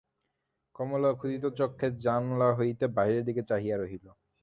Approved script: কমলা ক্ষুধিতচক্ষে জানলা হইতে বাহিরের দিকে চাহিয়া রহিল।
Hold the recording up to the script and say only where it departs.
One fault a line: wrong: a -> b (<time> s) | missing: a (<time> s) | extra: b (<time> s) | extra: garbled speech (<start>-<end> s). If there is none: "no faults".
no faults